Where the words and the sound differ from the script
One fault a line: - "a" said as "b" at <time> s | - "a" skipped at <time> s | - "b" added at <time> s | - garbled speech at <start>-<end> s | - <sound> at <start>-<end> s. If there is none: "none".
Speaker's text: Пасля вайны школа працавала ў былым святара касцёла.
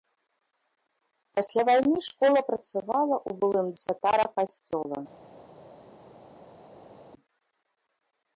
none